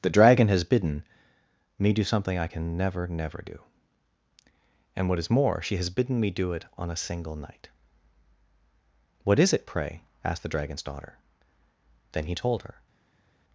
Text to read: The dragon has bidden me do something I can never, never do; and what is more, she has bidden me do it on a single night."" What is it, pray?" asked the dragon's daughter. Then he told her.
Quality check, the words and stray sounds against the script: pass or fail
pass